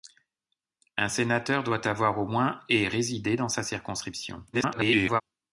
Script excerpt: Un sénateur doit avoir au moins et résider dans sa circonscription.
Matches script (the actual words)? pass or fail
fail